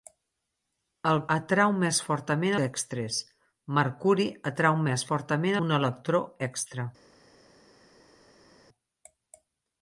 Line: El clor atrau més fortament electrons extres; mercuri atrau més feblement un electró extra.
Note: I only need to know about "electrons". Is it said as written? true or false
false